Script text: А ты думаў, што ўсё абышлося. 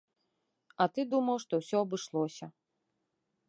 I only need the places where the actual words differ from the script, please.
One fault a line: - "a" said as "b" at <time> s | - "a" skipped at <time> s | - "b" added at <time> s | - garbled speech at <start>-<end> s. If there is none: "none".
none